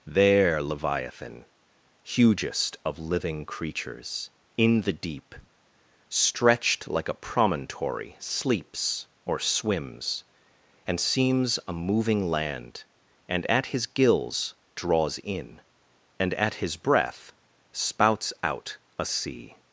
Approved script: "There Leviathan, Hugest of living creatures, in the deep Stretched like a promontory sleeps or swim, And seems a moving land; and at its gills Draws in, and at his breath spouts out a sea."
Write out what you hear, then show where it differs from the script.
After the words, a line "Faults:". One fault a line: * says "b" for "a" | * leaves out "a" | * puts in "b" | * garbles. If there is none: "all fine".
"There Leviathan, Hugest of living creatures, in the deep Stretched like a promontory sleeps or swims, And seems a moving land; and at his gills Draws in, and at his breath spouts out a sea."
Faults:
* says "swims" for "swim"
* says "his" for "its"